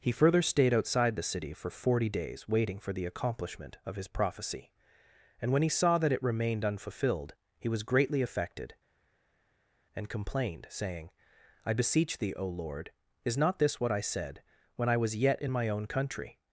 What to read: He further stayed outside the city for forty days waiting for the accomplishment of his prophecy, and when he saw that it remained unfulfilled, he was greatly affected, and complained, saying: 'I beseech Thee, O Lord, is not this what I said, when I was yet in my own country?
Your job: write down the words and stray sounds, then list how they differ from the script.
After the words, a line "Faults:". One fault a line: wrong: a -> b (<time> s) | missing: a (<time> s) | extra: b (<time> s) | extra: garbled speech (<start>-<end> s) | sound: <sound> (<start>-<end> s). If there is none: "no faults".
He further stayed outside the city for forty days waiting for the accomplishment of his prophecy, and when he saw that it remained unfulfilled, he was greatly affected, and complained, saying: 'I beseech Thee, O Lord, is not this what I said, when I was yet in my own country?
Faults:
no faults